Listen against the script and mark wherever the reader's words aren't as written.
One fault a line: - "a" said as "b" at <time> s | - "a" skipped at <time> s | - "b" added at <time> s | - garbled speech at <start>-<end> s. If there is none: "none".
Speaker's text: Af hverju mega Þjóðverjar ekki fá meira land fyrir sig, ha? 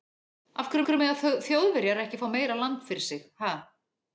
- "hverju" added at 0.9 s